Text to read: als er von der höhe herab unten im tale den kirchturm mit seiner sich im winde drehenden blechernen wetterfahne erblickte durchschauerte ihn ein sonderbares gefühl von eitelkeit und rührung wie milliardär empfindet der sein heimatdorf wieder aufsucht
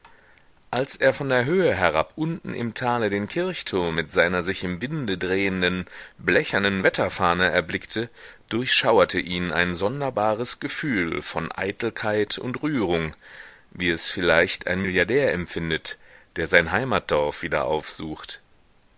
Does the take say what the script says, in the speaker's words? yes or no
no